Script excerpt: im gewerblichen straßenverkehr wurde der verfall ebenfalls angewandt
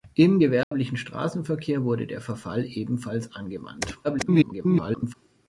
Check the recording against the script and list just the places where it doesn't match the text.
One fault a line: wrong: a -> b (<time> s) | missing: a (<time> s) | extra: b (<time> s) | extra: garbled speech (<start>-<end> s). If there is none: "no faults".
extra: garbled speech (4.0-5.1 s)